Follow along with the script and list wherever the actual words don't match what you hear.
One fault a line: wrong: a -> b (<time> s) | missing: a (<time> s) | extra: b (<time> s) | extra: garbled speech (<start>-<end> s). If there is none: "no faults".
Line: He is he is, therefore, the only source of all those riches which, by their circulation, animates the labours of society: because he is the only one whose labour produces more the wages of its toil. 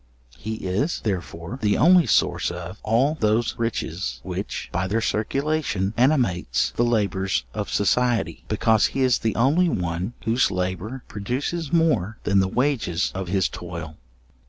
missing: he is (1.0 s)
extra: than (12.2 s)
wrong: its -> his (13.3 s)